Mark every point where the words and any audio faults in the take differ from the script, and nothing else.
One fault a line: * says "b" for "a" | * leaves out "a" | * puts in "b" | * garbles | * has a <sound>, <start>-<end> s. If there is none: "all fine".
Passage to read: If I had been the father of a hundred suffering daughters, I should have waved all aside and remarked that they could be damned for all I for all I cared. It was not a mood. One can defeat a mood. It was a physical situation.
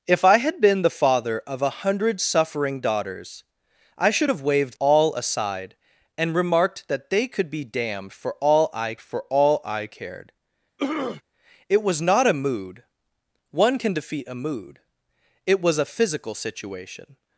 * has a throat clearing, 10.8-11.2 s